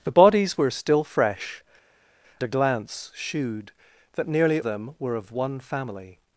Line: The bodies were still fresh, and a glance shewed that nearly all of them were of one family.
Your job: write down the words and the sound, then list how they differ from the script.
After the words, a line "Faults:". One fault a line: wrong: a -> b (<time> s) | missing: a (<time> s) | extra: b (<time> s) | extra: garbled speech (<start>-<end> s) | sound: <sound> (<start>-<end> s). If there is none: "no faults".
The bodies were still fresh, a glance shewed that nearly them were of one family.
Faults:
missing: and (1.6 s)
missing: all of (4.6 s)